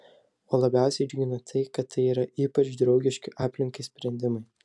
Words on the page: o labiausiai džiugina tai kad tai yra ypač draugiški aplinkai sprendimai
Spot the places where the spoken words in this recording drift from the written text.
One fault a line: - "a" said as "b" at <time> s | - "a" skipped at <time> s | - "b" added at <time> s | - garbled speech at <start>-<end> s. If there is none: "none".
none